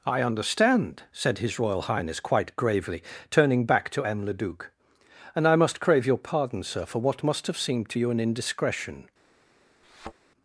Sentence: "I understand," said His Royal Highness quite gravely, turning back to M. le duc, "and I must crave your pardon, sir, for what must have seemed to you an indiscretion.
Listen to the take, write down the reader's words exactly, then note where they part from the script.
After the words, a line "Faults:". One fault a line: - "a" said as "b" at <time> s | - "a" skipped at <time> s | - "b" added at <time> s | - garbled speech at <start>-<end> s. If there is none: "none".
"I understand," said His Royal Highness quite gravely, turning back to M. le duc, "and I must crave your pardon, sir, for what must have seemed to you an indiscretion.
Faults:
none